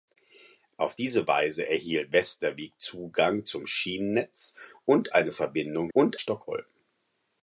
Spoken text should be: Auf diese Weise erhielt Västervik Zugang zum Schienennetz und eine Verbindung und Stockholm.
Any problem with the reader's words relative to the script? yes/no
no